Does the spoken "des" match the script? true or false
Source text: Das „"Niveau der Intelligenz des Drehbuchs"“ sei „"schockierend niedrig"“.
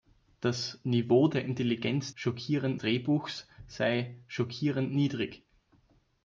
false